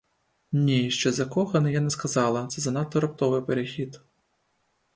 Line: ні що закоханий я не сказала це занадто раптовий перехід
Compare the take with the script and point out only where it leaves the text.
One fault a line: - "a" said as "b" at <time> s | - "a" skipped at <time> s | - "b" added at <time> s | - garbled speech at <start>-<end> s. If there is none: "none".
none